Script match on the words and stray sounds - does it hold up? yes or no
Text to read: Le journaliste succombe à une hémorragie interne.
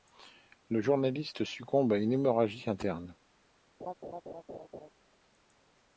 no